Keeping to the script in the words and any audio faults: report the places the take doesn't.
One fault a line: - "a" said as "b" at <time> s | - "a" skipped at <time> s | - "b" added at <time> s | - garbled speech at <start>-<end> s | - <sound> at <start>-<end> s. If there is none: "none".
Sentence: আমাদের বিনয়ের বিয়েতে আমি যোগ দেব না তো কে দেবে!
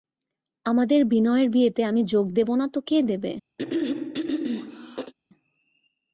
- throat clearing at 3.6-5.1 s